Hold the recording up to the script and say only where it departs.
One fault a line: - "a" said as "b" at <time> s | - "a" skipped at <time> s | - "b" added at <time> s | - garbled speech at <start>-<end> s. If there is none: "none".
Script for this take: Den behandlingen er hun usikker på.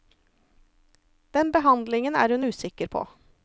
none